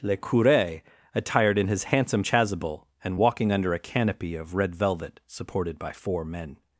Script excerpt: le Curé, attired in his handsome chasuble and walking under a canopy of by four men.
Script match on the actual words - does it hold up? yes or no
no